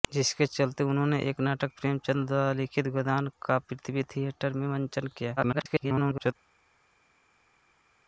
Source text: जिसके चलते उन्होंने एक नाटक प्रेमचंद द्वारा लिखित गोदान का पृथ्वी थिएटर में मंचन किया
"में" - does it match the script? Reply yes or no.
yes